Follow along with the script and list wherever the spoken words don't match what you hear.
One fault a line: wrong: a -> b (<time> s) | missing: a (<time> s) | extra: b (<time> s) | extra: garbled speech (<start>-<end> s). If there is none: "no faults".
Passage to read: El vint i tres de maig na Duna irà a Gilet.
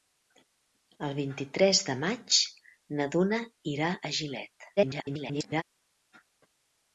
extra: garbled speech (4.8-5.6 s)